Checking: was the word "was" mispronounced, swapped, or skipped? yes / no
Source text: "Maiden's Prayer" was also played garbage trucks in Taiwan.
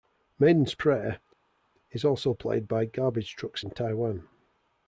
yes